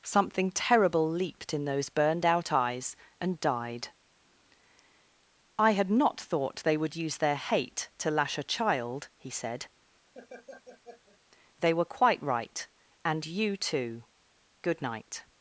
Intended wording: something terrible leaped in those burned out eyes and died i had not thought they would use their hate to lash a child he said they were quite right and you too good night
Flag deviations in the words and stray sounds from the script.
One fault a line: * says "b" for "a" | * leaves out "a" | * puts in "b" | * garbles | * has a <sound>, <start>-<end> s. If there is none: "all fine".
* has a laugh, 10.1-11.2 s